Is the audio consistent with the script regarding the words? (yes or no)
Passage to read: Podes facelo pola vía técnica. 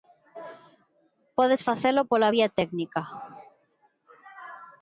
yes